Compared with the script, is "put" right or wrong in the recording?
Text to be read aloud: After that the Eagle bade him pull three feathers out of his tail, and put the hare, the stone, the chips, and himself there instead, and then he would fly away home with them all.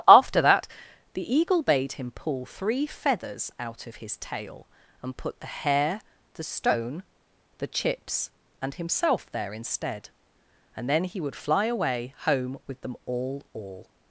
right